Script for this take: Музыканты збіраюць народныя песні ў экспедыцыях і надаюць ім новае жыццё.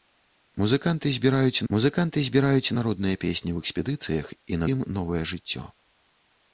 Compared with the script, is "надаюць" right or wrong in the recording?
wrong